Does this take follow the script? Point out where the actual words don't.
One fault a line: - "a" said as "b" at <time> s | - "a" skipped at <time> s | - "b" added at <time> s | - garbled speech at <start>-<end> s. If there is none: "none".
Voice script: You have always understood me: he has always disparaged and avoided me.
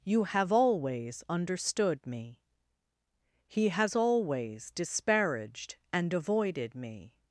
none